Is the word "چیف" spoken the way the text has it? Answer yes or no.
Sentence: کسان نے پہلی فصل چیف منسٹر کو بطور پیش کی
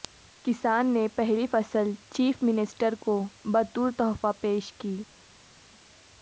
yes